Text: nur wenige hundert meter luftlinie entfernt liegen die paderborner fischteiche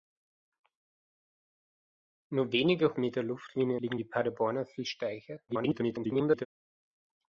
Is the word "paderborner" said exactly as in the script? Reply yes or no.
yes